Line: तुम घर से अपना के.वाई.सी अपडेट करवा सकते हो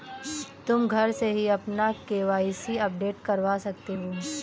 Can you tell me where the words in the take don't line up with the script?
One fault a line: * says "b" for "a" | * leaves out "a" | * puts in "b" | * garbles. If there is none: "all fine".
* puts in "ही"